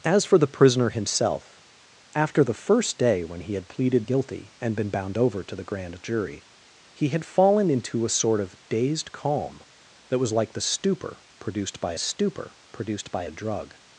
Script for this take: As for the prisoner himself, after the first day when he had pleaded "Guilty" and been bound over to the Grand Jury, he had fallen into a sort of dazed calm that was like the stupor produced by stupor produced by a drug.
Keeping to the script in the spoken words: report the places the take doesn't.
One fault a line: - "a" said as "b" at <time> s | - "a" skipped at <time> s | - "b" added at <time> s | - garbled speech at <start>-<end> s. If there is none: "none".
none